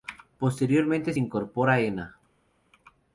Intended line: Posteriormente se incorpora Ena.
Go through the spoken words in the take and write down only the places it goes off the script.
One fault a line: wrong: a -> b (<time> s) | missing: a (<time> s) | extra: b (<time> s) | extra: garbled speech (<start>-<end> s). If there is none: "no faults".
no faults